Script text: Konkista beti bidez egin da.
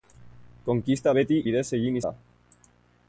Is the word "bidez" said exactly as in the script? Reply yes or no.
yes